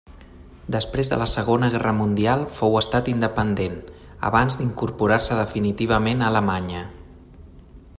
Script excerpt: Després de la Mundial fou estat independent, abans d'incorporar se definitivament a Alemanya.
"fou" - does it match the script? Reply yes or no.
yes